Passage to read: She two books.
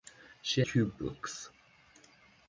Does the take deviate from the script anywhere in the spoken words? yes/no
no